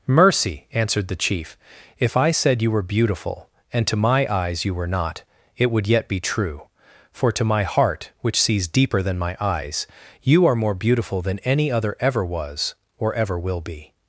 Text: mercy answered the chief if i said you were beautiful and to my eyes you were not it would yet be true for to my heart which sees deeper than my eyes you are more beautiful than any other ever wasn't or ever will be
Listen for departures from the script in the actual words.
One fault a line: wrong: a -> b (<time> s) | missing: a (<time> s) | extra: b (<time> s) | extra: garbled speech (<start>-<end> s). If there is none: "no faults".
wrong: wasn't -> was (12.2 s)